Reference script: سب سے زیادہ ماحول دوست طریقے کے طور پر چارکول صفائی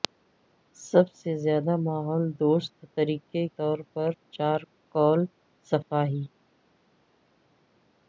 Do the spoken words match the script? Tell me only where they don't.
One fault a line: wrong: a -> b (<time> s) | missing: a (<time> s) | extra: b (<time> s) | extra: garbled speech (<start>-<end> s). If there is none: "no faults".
missing: کے (3.5 s)